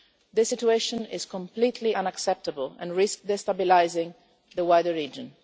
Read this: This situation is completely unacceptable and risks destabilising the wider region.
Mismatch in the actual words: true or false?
false